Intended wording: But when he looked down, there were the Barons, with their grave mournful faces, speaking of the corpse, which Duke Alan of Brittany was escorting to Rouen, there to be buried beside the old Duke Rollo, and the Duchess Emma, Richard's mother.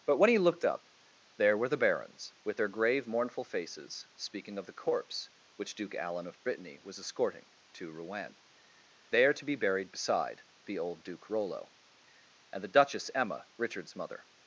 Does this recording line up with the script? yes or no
no